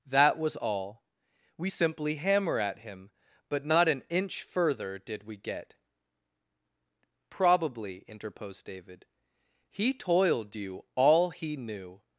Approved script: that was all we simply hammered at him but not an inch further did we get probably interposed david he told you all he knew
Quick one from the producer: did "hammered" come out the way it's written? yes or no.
no